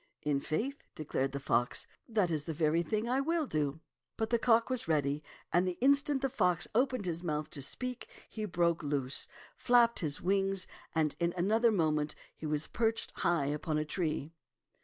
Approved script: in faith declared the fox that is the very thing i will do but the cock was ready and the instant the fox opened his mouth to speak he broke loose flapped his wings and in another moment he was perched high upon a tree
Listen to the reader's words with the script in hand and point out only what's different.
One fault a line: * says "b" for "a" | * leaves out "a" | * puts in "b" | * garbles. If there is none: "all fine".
all fine